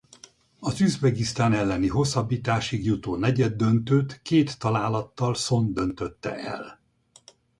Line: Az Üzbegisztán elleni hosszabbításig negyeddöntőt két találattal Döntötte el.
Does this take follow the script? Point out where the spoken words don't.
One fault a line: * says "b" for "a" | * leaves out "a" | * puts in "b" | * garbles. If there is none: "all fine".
* puts in "jutó"
* puts in "Szon"